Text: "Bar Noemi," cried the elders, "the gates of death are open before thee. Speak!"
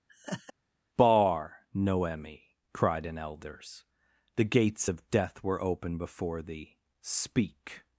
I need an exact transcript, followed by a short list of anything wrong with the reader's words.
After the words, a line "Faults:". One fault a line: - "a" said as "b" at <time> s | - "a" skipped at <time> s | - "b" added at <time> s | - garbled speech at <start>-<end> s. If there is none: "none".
"Bar Noemi," cried an elders, "the gates of death were open before thee. Speak!"
Faults:
- "the" said as "an" at 3.1 s
- "are" said as "were" at 5.4 s